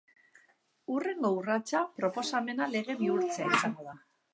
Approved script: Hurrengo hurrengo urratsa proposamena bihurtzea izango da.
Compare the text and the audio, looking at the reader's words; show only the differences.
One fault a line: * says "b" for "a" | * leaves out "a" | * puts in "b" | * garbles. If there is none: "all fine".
* leaves out "hurrengo"
* puts in "lege"